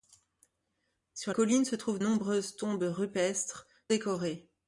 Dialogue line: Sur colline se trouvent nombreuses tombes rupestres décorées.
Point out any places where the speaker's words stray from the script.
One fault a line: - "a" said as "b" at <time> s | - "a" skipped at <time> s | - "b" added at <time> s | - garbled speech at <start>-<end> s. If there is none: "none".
none